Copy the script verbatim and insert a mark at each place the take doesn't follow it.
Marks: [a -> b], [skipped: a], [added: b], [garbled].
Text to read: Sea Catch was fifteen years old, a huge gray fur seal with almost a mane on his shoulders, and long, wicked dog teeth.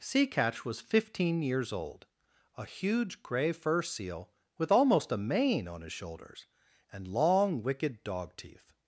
Sea Catch was fifteen years old, a huge gray fur seal with almost a mane on his shoulders, and long, wicked dog teeth.